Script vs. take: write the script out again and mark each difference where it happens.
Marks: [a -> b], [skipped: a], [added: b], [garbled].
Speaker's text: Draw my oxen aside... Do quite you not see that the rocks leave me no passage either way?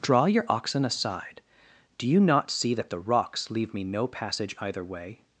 Draw [my -> your] oxen aside... Do [skipped: quite] you not see that the rocks leave me no passage either way?